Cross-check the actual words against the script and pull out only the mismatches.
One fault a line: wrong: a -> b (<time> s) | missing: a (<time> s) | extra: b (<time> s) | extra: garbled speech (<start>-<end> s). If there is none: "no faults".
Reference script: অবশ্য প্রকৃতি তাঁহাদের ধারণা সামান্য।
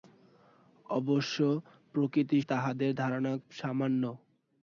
no faults